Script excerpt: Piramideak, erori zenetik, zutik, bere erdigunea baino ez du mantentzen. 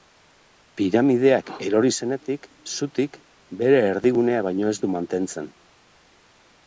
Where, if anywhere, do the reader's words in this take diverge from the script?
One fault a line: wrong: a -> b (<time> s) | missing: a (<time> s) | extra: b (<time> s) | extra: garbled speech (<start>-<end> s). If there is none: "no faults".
no faults